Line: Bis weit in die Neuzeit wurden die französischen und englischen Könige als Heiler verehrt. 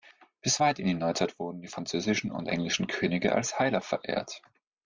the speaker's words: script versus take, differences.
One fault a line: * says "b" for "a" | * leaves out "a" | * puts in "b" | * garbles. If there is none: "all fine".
all fine